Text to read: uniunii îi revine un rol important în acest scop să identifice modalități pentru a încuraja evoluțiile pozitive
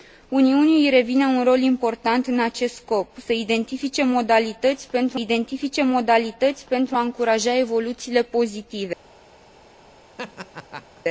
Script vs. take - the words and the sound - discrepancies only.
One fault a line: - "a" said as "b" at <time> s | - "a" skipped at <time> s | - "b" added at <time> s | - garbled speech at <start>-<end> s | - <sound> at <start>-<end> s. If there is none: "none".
- "identifice modalități pentru" added at 5.1 s
- laugh at 10.2-11.0 s